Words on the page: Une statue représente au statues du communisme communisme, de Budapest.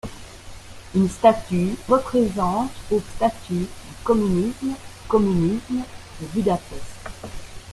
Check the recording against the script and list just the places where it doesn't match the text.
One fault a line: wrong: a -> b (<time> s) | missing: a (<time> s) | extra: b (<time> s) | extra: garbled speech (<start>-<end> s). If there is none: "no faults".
no faults